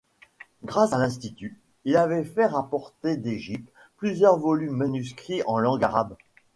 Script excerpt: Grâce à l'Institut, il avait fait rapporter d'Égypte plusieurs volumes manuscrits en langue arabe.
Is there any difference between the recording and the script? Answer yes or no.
no